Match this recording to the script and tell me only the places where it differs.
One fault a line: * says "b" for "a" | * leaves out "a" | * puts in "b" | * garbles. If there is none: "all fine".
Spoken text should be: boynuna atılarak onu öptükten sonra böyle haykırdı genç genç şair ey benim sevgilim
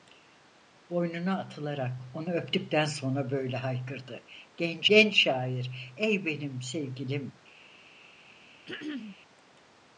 all fine